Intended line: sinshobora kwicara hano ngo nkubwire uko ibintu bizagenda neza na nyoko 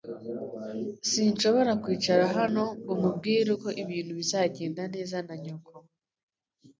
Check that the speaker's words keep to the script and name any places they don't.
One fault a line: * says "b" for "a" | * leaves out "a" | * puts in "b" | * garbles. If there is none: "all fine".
all fine